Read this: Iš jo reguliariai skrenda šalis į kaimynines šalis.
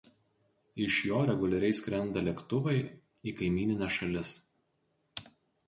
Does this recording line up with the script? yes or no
no